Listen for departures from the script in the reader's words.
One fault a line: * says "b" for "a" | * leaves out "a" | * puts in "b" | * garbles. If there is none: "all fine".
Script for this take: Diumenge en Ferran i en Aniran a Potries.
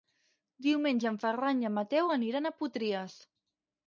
* puts in "Mateu"